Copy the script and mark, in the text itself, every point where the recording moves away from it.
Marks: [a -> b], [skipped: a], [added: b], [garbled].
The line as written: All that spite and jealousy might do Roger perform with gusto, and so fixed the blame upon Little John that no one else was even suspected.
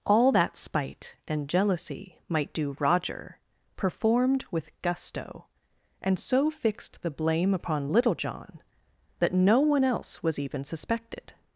All that spite and jealousy might do Roger [perform -> performed] with gusto, and so fixed the blame upon Little John that no one else was even suspected.